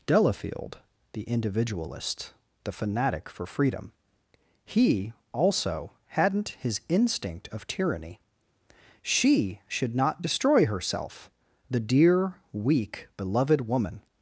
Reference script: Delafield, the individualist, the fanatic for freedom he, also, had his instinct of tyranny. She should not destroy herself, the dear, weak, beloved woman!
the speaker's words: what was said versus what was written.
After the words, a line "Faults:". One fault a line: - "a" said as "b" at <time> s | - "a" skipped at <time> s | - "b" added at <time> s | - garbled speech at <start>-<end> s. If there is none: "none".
Delafield, the individualist, the fanatic for freedom he, also, hadn't his instinct of tyranny. She should not destroy herself, the dear, weak, beloved woman!
Faults:
- "had" said as "hadn't" at 6.1 s